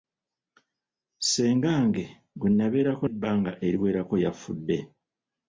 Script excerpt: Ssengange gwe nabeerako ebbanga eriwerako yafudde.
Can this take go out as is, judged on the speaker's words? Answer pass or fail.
pass